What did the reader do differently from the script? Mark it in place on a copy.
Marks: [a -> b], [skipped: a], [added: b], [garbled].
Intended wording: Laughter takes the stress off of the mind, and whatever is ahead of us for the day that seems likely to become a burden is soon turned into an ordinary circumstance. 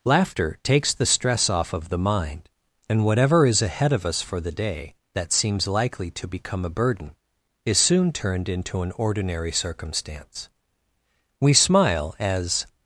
Laughter takes the stress off of the mind, and whatever is ahead of us for the day that seems likely to become a burden is soon turned into an ordinary circumstance. [added: We smile as]